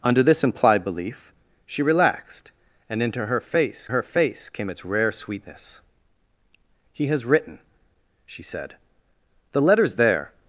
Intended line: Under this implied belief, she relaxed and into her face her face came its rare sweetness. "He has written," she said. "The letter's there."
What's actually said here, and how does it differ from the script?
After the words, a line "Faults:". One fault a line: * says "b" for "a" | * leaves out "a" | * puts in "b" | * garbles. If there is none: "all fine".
Under this implied belief, she relaxed and into her face her face came its rare sweetness. "He has written," she said. "The letter's there."
Faults:
all fine